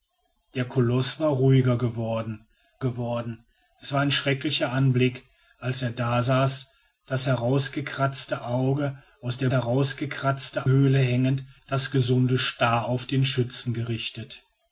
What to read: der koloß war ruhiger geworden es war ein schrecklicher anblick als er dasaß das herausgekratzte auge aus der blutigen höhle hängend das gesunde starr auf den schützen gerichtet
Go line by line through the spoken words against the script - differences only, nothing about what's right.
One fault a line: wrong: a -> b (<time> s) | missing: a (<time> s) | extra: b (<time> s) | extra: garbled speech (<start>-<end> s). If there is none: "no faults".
extra: geworden (2.8 s)
wrong: blutigen -> herausgekratzte (9.5 s)